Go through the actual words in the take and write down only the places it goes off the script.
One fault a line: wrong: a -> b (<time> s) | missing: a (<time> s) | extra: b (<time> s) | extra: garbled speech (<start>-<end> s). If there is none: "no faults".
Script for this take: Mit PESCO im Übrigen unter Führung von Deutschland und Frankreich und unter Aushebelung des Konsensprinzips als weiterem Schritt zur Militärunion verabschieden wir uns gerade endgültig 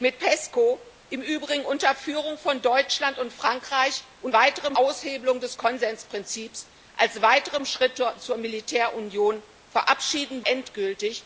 wrong: unter -> weiterem (4.3 s)
missing: wir uns gerade (10.4 s)